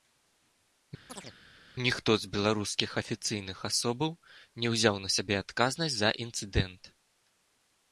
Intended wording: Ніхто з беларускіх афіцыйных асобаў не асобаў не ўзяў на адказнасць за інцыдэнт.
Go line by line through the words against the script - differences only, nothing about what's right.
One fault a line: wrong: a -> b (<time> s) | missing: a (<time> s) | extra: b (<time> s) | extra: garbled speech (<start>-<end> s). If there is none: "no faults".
missing: асобаў не (4.7 s)
extra: сябе (5.2 s)